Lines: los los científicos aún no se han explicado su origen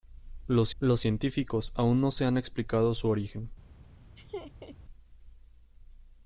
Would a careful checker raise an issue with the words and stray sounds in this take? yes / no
yes